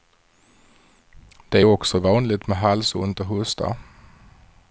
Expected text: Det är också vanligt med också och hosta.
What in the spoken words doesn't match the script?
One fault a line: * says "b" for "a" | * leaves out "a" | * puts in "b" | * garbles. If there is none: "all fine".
* says "halsont" for "också"